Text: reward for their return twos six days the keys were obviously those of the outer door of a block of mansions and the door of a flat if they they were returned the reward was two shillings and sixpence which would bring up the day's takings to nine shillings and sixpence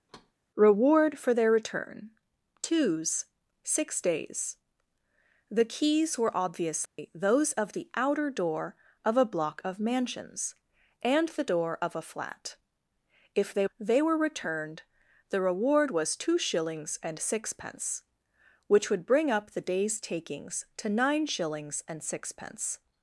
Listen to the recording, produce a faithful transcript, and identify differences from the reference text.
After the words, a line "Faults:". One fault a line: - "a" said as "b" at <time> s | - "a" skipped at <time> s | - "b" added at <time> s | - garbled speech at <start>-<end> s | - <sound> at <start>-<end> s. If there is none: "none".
reward for their return twos six days the keys were obviously those of the outer door of a block of mansions and the door of a flat if they they were returned the reward was two shillings and sixpence which would bring up the day's takings to nine shillings and sixpence
Faults:
- thud at 0.1-0.3 s
- dropout at 6.9-7.0 s